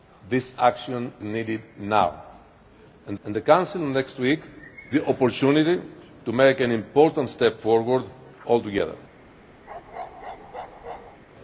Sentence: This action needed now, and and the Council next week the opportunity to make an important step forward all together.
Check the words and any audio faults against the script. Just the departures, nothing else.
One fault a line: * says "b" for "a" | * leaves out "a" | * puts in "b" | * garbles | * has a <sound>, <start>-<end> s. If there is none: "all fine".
* has a bark, 9.7-11.2 s